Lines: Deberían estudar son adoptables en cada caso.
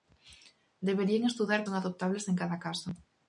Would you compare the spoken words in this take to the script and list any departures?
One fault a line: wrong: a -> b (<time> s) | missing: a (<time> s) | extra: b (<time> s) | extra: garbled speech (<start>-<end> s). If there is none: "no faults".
no faults